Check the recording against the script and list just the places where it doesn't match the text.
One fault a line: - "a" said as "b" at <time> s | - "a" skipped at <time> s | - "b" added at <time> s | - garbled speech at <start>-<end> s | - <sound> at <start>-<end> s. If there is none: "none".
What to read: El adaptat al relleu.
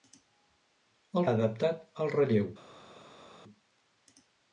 none